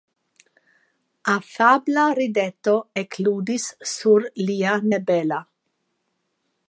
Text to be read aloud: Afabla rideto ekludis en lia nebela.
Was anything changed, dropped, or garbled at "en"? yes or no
yes